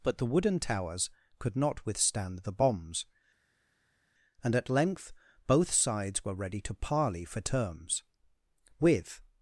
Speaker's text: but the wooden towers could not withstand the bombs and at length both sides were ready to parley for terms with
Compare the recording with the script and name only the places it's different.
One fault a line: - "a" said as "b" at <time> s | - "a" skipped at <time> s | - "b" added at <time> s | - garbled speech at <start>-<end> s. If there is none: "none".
none